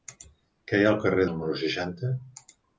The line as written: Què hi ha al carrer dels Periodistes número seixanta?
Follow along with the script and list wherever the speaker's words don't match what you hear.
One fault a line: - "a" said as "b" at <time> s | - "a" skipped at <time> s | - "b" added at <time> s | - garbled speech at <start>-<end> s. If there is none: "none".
- "dels Periodistes" skipped at 1.3 s